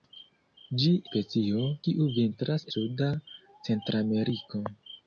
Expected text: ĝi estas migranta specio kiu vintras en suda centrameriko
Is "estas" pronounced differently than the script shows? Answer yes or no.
yes